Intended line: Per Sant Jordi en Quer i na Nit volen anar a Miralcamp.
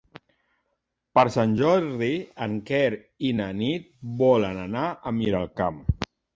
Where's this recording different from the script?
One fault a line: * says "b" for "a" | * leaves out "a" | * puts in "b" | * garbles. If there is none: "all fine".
all fine